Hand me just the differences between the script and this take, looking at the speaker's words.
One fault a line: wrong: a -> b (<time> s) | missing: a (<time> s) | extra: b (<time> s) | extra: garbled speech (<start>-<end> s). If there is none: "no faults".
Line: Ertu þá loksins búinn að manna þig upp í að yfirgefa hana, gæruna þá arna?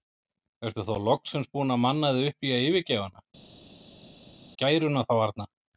no faults